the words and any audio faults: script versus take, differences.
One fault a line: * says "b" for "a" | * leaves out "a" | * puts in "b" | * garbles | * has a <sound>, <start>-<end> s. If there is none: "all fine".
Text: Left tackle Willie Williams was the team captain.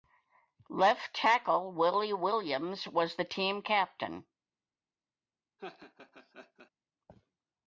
* has a laugh, 5.6-6.7 s